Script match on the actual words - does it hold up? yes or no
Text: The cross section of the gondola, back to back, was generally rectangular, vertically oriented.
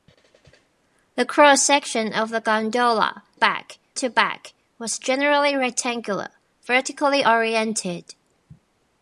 yes